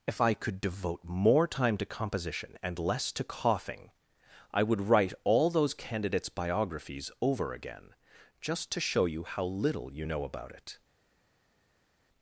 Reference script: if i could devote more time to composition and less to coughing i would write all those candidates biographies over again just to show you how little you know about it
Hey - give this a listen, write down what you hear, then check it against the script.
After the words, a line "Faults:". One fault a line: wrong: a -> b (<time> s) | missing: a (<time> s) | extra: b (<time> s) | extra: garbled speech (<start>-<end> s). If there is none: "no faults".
if i could devote more time to composition and less to coughing i would write all those candidates biographies over again just to show you how little you know about it
Faults:
no faults